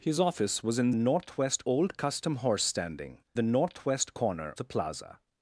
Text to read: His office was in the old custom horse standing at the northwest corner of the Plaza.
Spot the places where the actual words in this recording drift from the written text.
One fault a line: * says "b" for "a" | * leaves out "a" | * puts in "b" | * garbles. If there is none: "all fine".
* says "northwest" for "the"
* leaves out "at"
* leaves out "of"